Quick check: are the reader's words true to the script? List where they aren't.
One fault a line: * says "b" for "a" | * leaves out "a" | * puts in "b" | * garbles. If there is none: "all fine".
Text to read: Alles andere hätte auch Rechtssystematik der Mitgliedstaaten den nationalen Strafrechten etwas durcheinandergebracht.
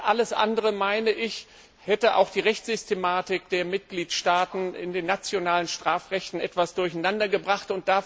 * puts in "die"
* puts in "in"